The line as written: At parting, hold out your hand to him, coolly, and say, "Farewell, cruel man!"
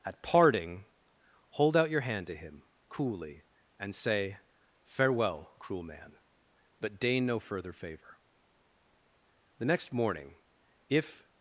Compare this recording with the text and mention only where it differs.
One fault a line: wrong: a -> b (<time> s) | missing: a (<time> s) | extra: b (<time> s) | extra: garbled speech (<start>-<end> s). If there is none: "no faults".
extra: but deign no further favor The next morning if (6.8 s)